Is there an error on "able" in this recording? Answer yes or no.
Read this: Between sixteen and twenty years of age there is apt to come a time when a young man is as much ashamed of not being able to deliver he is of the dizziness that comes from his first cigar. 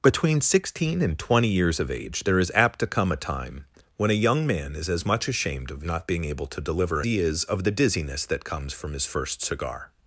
no